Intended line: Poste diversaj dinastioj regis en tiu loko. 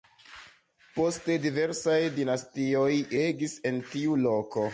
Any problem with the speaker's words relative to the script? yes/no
no